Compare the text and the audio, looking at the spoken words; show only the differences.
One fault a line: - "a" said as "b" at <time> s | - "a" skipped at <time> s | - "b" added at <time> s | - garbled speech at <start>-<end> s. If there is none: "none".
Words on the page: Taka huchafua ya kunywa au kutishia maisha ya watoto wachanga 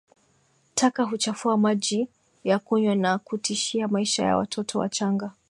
- "maji" added at 1.6 s
- "au" said as "na" at 3.0 s